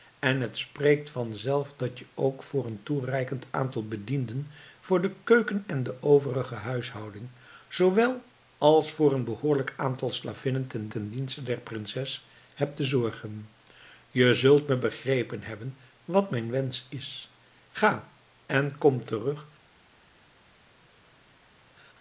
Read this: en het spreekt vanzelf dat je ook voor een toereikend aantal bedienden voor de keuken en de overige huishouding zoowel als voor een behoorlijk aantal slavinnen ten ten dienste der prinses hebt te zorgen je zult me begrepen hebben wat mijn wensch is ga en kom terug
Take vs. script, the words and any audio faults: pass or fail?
pass